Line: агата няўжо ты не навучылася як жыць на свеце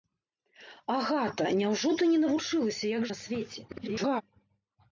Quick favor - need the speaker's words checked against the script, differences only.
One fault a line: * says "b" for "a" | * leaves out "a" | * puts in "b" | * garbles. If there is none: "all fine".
* leaves out "жыць"
* garbles